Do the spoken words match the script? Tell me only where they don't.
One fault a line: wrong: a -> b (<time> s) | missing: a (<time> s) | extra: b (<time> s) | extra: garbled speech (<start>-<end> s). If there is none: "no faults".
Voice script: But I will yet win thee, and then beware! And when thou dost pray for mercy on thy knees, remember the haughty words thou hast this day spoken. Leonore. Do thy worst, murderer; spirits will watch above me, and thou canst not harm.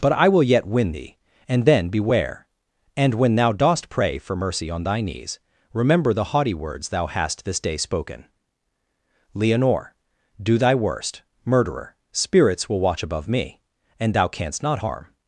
no faults